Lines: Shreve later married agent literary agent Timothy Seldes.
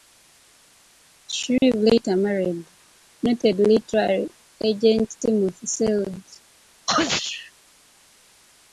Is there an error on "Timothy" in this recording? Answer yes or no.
no